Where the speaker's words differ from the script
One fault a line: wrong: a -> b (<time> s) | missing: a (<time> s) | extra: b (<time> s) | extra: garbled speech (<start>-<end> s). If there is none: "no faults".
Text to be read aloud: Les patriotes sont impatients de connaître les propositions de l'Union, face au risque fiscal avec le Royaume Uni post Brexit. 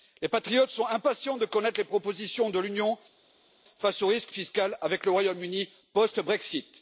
no faults